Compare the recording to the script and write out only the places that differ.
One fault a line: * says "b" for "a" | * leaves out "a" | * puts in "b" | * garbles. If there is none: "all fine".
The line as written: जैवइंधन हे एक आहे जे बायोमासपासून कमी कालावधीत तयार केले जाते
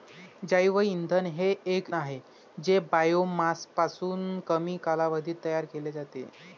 all fine